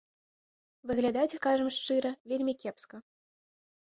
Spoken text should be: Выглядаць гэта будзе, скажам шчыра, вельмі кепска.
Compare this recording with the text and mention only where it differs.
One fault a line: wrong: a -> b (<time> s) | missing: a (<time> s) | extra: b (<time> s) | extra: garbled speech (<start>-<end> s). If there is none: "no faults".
missing: гэта будзе (1.4 s)